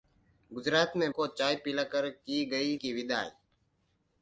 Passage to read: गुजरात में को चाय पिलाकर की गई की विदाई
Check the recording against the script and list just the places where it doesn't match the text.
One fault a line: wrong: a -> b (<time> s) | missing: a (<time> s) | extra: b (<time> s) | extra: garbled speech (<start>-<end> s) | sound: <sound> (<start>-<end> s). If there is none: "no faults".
no faults